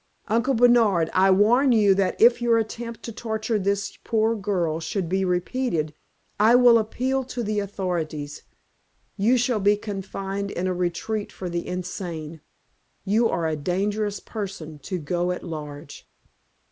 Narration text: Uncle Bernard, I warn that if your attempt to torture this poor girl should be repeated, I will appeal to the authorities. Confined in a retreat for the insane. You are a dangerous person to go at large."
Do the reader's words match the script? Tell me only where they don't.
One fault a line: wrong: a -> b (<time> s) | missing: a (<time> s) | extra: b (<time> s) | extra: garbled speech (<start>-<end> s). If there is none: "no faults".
extra: you (1.7 s)
extra: You shall be (9.2 s)